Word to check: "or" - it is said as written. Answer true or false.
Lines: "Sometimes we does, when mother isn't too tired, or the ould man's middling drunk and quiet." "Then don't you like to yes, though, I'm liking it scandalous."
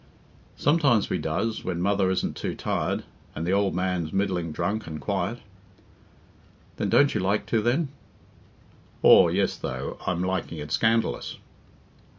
false